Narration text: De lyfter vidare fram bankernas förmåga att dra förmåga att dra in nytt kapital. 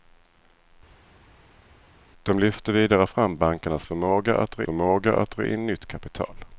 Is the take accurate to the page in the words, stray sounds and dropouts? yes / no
yes